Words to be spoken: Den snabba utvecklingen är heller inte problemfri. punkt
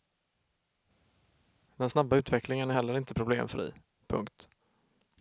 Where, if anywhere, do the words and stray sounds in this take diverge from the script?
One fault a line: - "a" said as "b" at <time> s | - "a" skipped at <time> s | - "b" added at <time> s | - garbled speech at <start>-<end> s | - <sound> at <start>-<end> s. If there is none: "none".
none